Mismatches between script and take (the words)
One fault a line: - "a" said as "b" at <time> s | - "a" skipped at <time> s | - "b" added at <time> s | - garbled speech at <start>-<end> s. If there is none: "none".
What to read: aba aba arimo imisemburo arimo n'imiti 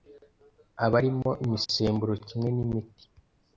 - "aba" skipped at 0.9 s
- "arimo" said as "kimwe" at 2.3 s